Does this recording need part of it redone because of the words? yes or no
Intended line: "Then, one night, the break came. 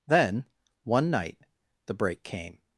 no